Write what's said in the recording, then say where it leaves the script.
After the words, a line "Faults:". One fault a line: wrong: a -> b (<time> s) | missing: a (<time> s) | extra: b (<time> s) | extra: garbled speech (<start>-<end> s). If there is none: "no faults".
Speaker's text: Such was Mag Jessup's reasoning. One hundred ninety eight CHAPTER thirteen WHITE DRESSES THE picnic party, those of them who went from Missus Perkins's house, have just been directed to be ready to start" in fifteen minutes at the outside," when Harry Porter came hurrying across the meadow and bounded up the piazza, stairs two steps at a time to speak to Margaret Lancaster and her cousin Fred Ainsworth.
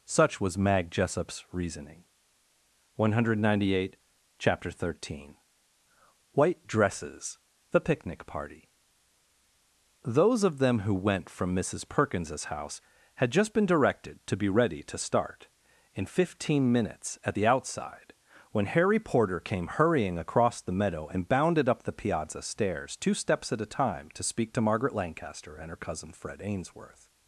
Such was Mag Jessup's reasoning. One hundred ninety eight CHAPTER thirteen WHITE DRESSES THE picnic party, those of them who went from Missus Perkins's house, had just been directed to be ready to start" in fifteen minutes at the outside," when Harry Porter came hurrying across the meadow and bounded up the piazza, stairs two steps at a time to speak to Margaret Lancaster and her cousin Fred Ainsworth.
Faults:
wrong: have -> had (13.2 s)